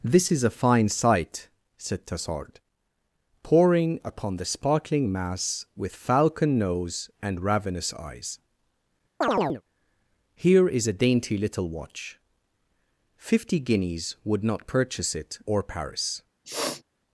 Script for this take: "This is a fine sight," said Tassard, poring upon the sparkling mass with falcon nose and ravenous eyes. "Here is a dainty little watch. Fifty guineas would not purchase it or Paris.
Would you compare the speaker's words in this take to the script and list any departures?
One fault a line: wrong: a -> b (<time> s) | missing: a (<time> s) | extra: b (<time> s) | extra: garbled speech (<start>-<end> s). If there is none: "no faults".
no faults